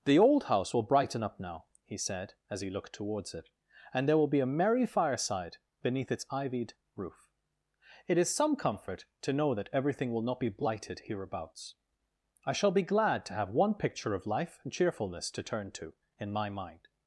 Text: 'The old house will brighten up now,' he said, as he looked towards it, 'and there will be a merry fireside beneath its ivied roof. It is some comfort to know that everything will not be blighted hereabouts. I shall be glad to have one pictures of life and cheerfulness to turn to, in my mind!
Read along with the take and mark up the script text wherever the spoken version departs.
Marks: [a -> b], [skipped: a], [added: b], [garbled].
'The old house will brighten up now,' he said, as he looked towards it, 'and there will be a merry fireside beneath its ivied roof. It is some comfort to know that everything will not be blighted hereabouts. I shall be glad to have one [pictures -> picture] of life and cheerfulness to turn to, in my mind!